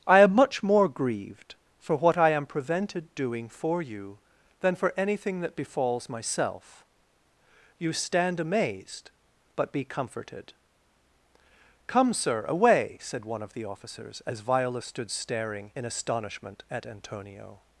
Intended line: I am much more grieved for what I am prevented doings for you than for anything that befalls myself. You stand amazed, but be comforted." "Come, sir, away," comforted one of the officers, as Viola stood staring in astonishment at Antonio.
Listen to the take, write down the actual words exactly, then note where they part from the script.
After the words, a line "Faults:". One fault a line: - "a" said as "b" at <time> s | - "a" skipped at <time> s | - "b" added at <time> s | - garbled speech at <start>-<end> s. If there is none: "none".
I am much more grieved for what I am prevented doing for you than for anything that befalls myself. You stand amazed, but be comforted." "Come, sir, away," said one of the officers, as Viola stood staring in astonishment at Antonio.
Faults:
- "doings" said as "doing" at 3.1 s
- "comforted" said as "said" at 13.0 s